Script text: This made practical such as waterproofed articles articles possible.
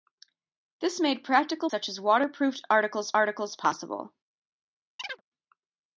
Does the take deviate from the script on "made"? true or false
false